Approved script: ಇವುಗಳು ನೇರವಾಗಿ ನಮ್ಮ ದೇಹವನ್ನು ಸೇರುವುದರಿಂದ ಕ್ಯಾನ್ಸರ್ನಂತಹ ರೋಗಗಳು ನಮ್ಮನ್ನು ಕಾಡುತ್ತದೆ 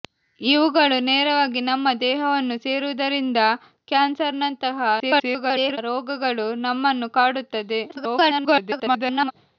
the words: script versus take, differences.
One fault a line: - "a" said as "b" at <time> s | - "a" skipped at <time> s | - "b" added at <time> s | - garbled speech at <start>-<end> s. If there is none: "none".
- garbled speech at 5.0-5.8 s
- garbled speech at 7.9-9.3 s